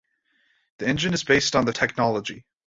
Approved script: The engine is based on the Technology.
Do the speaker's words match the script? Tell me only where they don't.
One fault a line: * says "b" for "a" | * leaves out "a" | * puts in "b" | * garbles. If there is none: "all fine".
all fine